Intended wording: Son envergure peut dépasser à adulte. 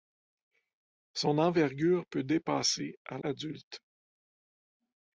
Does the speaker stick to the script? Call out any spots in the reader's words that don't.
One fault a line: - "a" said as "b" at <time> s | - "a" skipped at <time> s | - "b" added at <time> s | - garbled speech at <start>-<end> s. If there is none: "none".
none